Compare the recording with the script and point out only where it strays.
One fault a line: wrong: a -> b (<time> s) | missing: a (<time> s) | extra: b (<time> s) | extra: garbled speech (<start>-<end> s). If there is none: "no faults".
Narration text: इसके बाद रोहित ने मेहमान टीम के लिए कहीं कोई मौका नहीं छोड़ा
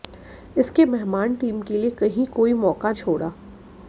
missing: बाद रोहित ने (0.8 s)
missing: नहीं (2.9 s)